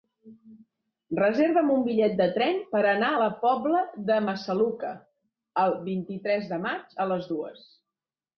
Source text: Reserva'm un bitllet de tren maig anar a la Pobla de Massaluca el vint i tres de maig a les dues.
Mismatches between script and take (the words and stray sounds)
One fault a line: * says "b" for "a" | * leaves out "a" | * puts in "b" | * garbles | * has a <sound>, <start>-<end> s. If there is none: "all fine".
* says "per" for "maig"